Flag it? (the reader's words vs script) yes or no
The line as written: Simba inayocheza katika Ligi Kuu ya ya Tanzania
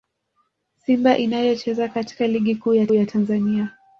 no